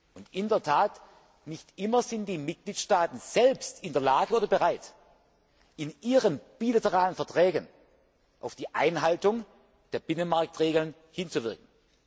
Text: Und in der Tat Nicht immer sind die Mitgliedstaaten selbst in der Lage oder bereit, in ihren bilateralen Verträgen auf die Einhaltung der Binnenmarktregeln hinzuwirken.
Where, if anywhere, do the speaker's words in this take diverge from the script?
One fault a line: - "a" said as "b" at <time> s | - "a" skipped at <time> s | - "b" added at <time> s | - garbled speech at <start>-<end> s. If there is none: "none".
none